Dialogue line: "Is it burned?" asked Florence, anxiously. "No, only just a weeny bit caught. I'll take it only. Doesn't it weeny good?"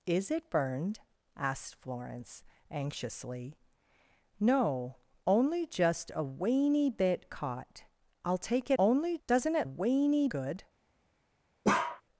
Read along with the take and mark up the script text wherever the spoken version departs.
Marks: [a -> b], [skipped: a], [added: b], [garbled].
"Is it burned?" asked Florence, anxiously. "No, only just a weeny bit caught. I'll take it only. Doesn't it weeny good?"